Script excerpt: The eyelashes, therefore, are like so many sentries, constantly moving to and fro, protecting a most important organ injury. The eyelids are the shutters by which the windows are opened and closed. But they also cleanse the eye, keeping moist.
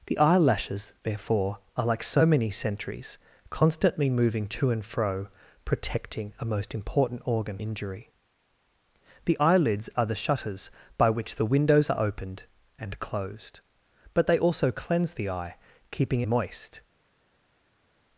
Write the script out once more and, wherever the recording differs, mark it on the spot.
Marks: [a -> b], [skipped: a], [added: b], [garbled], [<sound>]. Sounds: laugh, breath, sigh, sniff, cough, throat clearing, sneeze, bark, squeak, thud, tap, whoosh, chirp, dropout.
The eyelashes, therefore, are like so many sentries, constantly moving to and fro, protecting a most important organ injury. The eyelids are the shutters by which the windows are opened and closed. But they also cleanse the eye, keeping moist.